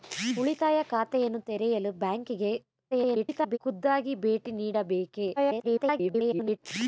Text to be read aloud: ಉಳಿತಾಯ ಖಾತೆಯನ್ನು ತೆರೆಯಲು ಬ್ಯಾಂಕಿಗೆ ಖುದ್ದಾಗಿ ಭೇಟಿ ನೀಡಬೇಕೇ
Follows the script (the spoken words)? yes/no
no